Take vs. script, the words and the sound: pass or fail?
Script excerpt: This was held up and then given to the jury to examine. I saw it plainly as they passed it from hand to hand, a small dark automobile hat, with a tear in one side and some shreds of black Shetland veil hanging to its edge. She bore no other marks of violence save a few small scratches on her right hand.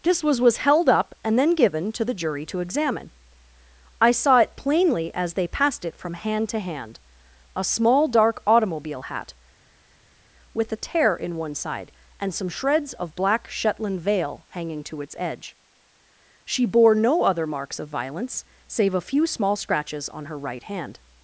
fail